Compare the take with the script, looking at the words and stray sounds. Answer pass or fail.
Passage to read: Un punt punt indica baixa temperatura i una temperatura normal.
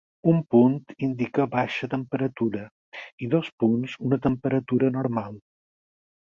fail